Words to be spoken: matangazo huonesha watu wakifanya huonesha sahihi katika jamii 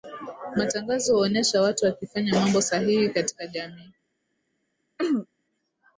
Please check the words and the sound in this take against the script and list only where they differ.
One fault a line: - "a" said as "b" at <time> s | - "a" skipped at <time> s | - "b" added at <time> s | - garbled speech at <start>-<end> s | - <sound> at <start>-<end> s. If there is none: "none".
- "huonesha" said as "mambo" at 2.4 s
- throat clearing at 5.0-5.3 s